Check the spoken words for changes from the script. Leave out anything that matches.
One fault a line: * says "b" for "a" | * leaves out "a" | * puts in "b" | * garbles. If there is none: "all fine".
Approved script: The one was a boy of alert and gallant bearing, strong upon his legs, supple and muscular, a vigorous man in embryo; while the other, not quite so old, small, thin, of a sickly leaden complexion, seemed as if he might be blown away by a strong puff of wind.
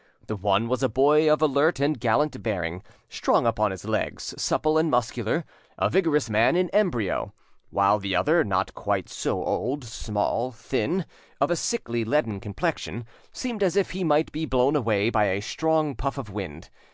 all fine